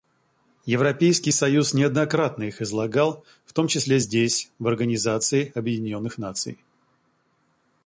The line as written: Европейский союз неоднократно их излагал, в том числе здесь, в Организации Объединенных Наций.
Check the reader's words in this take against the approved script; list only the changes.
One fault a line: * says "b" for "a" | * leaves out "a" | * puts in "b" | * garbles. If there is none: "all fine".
all fine